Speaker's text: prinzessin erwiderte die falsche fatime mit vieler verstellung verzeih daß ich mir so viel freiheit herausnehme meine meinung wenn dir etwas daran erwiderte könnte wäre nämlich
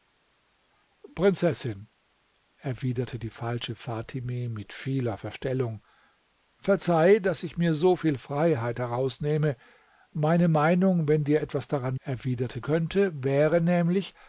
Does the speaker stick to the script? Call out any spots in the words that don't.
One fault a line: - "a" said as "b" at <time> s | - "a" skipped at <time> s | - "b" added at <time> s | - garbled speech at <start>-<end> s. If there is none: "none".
none